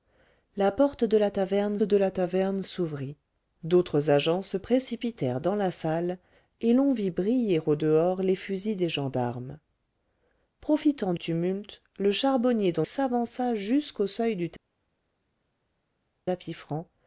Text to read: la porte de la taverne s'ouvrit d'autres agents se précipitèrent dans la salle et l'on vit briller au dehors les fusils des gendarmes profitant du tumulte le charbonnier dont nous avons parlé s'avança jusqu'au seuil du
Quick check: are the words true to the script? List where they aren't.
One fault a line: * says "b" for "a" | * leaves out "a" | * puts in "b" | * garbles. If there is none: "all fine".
* puts in "de la taverne"
* leaves out "du"
* leaves out "nous avons parlé"